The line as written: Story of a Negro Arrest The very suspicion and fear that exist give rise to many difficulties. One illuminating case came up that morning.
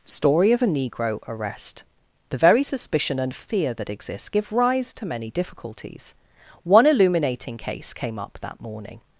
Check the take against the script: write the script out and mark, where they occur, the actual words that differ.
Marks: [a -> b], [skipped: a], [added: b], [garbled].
Story of a Negro Arrest The very suspicion and fear that [exist -> exists] give rise to many difficulties. One illuminating case came up that morning.